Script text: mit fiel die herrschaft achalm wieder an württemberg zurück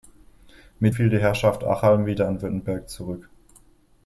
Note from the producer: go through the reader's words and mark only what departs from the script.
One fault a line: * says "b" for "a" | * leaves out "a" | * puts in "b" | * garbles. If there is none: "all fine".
all fine